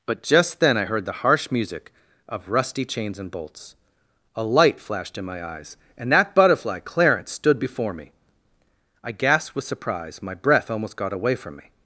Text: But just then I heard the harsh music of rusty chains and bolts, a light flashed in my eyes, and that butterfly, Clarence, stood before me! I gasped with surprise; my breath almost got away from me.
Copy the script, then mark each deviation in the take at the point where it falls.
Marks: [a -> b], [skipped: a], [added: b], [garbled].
But just then I heard the harsh music of rusty chains and bolts, a light flashed in my eyes, and that butterfly, Clarence, stood before me! I gasped with surprise; my breath almost got away from me.